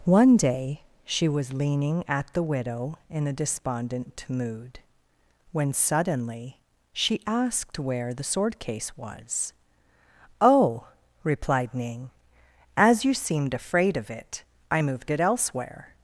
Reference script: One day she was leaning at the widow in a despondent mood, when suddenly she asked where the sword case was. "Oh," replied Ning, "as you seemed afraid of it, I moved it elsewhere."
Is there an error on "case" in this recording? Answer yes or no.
no